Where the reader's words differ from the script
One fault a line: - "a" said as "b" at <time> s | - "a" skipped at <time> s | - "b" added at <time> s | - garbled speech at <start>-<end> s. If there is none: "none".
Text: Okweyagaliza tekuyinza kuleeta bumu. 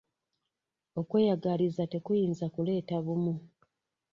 none